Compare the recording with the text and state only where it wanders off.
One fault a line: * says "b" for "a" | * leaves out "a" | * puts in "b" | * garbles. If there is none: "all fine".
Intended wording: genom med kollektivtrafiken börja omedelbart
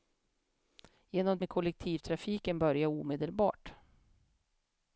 all fine